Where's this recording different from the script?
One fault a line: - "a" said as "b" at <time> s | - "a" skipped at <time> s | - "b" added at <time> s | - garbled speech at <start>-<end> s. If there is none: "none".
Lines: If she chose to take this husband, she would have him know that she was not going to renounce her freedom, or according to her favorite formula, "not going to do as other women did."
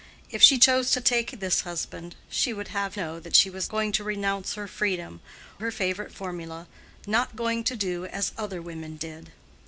- "him" skipped at 3.0 s
- "not" skipped at 3.7 s
- "or according to" skipped at 5.2 s